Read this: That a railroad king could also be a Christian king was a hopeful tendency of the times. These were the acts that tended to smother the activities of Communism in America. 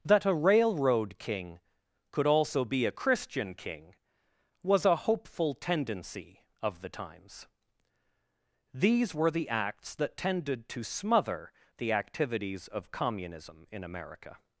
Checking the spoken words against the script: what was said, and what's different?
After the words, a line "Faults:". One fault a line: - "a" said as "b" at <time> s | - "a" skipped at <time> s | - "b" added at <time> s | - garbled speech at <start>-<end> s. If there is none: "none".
That a railroad king could also be a Christian king was a hopeful tendency of the times. These were the acts that tended to smother the activities of Communism in America.
Faults:
none